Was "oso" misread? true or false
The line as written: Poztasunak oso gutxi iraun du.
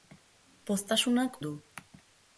true